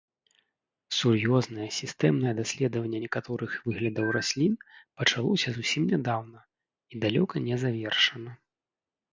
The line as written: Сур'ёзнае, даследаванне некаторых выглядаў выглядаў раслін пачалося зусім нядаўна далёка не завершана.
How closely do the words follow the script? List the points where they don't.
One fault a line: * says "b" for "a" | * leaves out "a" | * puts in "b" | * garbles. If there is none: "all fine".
* puts in "сістэмнае"
* leaves out "выглядаў"
* puts in "і"